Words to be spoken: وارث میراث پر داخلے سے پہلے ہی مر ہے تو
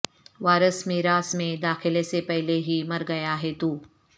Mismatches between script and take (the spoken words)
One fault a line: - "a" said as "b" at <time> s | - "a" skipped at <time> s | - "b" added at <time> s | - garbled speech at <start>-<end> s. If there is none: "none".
- "پر" said as "میں" at 1.3 s
- "گیا" added at 3.1 s